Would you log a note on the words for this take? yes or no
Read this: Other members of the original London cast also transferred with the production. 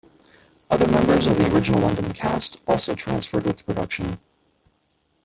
no